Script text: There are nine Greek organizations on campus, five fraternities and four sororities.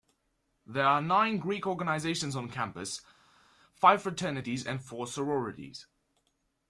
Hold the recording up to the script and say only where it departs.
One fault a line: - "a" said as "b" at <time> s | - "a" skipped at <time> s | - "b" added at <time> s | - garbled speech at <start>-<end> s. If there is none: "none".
none